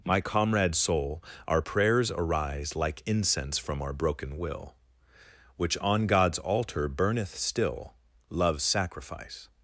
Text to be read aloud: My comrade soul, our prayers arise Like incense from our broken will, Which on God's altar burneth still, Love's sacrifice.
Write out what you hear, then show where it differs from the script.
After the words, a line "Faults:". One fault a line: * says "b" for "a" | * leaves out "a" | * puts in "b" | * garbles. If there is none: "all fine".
My comrade soul, our prayers arise Like incense from our broken will, Which on God's altar burneth still, Love's sacrifice.
Faults:
all fine